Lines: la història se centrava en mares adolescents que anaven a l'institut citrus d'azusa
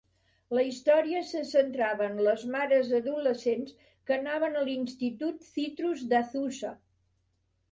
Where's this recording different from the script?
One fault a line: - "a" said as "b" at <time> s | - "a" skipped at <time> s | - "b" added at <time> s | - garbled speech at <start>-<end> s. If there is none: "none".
- "les" added at 2.3 s